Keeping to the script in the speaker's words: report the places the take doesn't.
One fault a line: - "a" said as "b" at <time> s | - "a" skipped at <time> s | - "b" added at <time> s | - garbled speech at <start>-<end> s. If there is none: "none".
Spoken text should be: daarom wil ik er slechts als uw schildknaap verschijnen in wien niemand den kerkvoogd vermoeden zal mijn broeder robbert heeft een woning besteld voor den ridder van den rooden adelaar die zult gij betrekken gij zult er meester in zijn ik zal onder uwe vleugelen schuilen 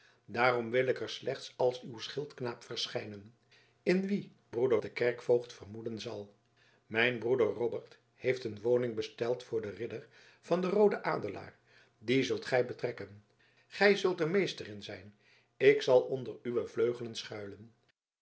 - "niemand" said as "broeder" at 4.5 s